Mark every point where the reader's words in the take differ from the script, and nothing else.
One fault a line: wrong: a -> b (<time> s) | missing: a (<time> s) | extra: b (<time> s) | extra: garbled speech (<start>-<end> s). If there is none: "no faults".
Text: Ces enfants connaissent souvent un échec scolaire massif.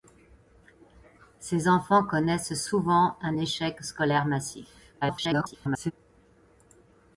extra: garbled speech (5.0-5.9 s)